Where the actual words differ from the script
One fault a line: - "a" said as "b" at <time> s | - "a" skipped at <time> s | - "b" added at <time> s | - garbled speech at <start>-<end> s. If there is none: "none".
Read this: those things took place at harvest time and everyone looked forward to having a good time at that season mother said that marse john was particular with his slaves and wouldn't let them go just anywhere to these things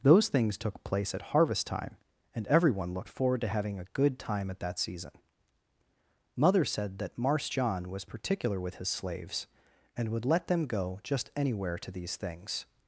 - "wouldn't" said as "would" at 10.1 s